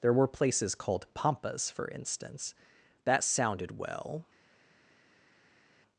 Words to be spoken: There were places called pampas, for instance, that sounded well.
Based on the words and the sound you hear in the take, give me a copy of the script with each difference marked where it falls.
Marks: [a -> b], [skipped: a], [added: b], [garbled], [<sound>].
There were places called pampas, for instance, that sounded well.